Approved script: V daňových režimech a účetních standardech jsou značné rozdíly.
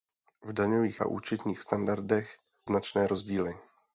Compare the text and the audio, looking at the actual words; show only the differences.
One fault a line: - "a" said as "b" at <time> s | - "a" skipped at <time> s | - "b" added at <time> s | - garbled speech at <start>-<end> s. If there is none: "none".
- "režimech" skipped at 1.0 s
- "jsou" skipped at 2.4 s